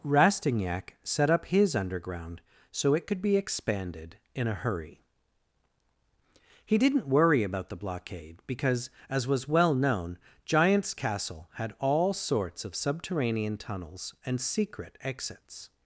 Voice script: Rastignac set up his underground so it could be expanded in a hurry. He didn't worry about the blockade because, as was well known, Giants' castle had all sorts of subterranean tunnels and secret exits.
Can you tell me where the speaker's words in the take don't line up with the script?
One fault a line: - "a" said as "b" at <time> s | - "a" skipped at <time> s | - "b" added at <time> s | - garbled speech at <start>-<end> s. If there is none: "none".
none